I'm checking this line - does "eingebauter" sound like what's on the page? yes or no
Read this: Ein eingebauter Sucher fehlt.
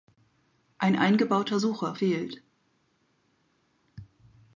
yes